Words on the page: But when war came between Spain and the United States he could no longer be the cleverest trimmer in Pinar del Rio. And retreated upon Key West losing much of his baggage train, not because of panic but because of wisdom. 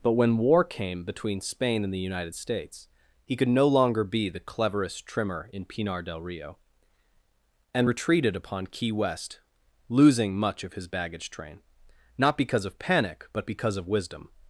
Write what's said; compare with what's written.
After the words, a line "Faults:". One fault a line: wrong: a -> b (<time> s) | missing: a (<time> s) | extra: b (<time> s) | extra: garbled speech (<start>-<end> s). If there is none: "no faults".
But when war came between Spain and the United States he could no longer be the cleverest trimmer in Pinar del Rio. And retreated upon Key West losing much of his baggage train, not because of panic but because of wisdom.
Faults:
no faults